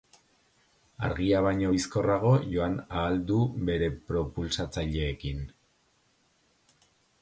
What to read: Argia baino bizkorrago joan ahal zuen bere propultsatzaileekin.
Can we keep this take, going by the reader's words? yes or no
no